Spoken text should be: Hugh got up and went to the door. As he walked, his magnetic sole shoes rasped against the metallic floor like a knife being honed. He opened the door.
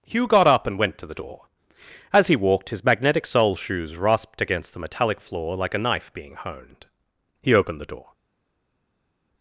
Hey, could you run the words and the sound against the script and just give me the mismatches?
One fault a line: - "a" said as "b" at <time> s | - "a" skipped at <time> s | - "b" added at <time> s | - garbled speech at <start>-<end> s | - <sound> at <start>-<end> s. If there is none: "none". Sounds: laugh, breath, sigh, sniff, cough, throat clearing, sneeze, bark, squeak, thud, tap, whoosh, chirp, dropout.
none